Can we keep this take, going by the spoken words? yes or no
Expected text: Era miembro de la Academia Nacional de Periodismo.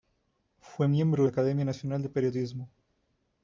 no